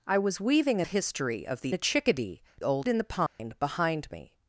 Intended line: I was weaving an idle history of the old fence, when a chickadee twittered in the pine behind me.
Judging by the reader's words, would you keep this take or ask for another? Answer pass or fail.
fail